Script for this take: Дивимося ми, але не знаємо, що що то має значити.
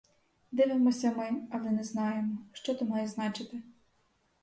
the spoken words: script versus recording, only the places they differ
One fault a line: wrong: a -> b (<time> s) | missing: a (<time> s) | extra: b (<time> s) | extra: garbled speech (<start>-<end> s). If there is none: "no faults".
missing: що (2.8 s)